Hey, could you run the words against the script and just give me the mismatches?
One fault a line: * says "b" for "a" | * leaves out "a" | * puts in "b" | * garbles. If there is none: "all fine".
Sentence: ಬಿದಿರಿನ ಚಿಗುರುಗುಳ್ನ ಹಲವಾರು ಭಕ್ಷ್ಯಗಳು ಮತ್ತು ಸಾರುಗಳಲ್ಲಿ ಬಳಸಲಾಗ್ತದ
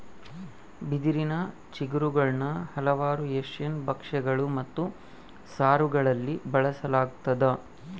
* puts in "ಏಷ್ಯನ್"